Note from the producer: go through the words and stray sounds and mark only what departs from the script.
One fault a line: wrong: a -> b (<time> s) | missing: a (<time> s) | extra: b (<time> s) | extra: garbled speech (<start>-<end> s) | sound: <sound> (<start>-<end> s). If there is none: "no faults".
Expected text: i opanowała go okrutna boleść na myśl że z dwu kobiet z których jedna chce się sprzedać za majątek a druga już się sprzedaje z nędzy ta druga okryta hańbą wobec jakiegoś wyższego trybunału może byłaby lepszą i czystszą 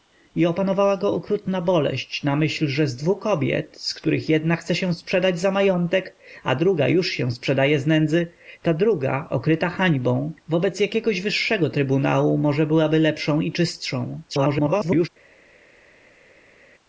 extra: garbled speech (14.3-15.1 s)